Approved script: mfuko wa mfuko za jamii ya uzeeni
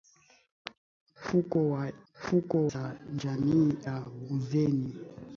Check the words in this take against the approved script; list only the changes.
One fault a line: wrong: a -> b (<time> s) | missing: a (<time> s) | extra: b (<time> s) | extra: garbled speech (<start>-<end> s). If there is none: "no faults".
no faults